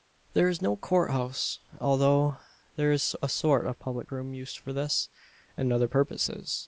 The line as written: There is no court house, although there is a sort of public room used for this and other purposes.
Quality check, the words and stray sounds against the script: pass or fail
pass